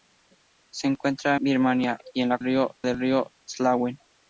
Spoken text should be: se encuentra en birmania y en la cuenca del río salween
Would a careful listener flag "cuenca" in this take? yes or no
yes